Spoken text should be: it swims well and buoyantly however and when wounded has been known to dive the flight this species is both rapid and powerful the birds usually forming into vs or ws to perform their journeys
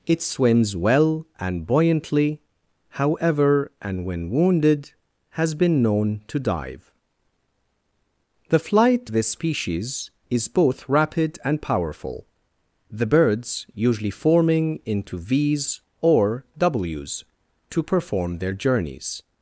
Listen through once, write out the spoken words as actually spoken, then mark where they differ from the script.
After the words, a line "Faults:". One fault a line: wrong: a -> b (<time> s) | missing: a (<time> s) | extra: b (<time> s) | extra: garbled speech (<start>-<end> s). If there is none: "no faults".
it swims well and buoyantly however and when wounded has been known to dive the flight this species is both rapid and powerful the birds usually forming into vs or ws to perform their journeys
Faults:
no faults